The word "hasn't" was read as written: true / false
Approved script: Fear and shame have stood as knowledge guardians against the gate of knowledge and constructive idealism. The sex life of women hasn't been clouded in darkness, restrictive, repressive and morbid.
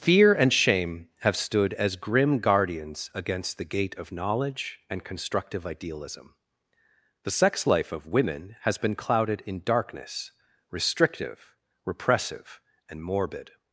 false